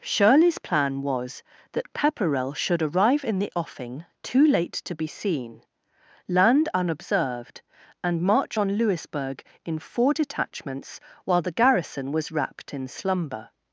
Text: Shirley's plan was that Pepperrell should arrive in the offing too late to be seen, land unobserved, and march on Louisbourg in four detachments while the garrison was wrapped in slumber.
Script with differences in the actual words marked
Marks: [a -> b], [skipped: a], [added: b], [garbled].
Shirley's plan was that Pepperrell should arrive in the offing too late to be seen, land unobserved, and march on Louisbourg in four detachments while the garrison was wrapped in slumber.